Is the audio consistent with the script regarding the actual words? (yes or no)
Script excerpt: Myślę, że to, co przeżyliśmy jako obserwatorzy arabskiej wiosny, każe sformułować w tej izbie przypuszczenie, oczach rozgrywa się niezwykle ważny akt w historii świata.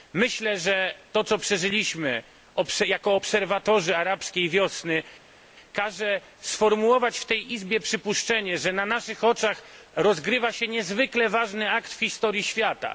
no